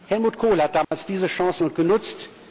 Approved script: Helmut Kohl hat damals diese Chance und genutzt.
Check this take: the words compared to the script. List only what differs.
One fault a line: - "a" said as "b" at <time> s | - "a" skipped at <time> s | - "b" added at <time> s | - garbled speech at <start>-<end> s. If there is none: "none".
none